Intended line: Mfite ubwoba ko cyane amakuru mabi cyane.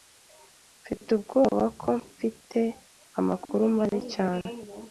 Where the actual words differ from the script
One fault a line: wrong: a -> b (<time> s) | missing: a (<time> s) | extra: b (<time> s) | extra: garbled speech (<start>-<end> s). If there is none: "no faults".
wrong: cyane -> mfite (2.1 s)